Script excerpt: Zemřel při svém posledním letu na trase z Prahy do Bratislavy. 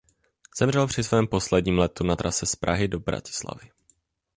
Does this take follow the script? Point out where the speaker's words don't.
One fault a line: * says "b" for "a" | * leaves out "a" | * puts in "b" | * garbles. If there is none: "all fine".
all fine